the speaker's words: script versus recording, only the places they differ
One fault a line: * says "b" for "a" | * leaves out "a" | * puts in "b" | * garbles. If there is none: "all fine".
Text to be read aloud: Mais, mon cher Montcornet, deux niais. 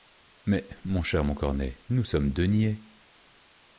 * puts in "nous sommes"